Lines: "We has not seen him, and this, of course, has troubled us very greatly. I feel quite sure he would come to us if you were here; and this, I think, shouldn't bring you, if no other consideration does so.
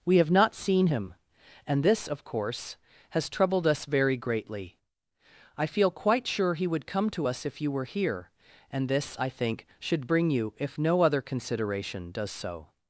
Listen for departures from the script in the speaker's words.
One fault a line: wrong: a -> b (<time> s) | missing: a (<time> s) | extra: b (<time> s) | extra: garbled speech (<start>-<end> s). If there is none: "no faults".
wrong: has -> have (0.2 s)
wrong: shouldn't -> should (9.8 s)